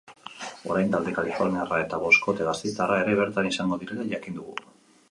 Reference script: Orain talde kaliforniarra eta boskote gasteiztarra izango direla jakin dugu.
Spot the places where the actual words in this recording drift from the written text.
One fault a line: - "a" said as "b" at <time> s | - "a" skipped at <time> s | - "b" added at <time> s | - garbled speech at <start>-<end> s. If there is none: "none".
- "ere bertan" added at 3.1 s